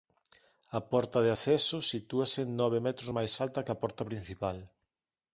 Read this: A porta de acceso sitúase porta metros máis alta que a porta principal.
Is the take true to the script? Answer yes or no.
no